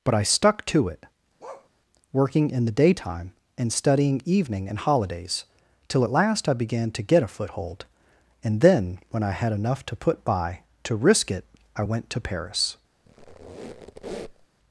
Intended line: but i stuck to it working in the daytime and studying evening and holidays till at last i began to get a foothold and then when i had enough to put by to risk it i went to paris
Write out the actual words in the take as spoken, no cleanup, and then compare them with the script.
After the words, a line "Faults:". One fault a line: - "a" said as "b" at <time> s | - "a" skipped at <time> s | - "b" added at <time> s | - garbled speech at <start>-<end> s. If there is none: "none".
but i stuck to it working in the daytime and studying evening and holidays till at last i began to get a foothold and then when i had enough to put by to risk it i went to paris
Faults:
none